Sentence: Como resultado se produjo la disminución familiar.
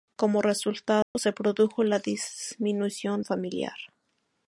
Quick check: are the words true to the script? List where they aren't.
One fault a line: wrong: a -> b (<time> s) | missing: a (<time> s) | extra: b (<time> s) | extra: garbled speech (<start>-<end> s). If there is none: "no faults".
no faults